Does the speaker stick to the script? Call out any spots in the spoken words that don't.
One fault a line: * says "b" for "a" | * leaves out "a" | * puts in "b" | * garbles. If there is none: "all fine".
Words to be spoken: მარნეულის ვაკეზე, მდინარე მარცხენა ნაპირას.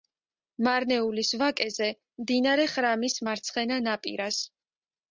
* puts in "ხრამის"